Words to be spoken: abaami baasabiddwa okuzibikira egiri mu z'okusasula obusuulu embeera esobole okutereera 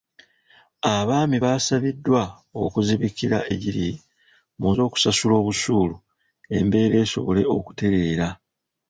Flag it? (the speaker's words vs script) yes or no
no